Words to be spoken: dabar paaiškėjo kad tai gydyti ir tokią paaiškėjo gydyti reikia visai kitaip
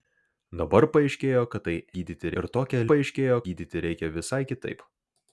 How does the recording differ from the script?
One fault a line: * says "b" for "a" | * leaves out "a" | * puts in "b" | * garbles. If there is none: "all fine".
all fine